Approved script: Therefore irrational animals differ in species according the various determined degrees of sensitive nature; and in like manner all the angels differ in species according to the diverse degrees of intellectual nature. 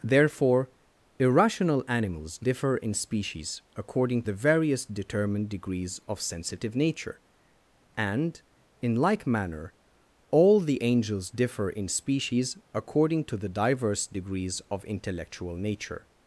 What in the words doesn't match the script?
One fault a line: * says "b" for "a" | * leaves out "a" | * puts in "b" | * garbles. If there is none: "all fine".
all fine